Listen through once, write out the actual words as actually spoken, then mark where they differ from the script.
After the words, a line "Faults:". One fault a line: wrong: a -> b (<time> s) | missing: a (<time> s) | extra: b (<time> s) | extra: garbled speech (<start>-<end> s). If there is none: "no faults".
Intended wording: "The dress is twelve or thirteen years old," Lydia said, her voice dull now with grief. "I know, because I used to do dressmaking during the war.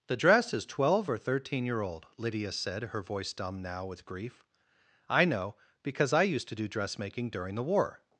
"The dress is twelve or thirteen year old," Lydia said, her voice dumb now with grief. "I know, because I used to do dressmaking during the war.
Faults:
wrong: years -> year (1.7 s)
wrong: dull -> dumb (3.3 s)